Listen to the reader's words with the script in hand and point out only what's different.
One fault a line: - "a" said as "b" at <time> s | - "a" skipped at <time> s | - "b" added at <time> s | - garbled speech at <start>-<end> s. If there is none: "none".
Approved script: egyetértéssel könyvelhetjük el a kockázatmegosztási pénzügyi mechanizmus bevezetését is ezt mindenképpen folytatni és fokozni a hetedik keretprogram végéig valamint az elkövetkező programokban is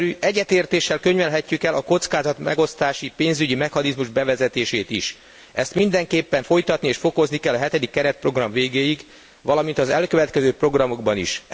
- "kell" added at 7.4 s